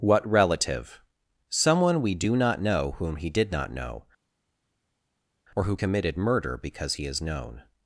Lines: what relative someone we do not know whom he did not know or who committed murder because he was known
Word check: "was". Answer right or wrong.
wrong